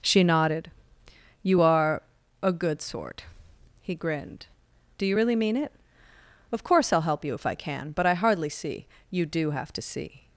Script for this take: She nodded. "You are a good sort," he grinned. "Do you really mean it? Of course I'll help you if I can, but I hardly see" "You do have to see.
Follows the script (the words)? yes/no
yes